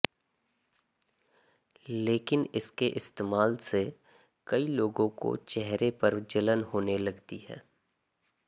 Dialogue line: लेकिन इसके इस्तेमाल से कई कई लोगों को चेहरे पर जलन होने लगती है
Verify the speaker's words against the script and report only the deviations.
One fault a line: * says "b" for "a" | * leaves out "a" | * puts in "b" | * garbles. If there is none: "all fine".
* leaves out "कई"